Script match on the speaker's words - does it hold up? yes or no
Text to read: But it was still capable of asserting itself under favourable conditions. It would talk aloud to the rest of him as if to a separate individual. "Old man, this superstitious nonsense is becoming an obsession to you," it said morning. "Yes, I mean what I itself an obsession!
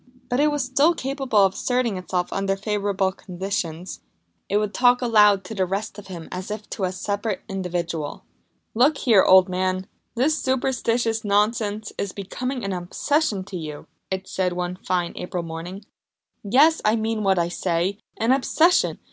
no